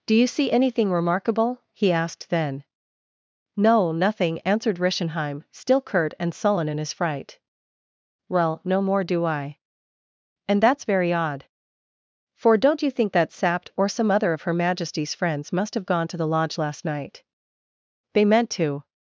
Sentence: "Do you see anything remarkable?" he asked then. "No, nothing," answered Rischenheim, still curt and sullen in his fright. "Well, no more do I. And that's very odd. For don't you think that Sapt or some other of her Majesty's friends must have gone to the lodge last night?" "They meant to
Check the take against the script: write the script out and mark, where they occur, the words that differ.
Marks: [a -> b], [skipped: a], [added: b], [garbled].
"Do you see anything remarkable?" he asked then. "No, nothing," answered Rischenheim, still curt and sullen in his fright. "Well, no more do I. And that's very odd. For don't you think that Sapt or some other of her Majesty's friends must have gone to the lodge last night?" "They meant to